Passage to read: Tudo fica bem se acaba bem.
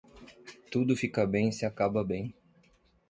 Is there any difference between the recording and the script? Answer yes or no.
no